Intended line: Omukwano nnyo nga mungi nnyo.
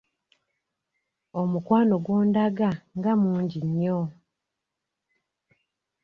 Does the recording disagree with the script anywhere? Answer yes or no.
yes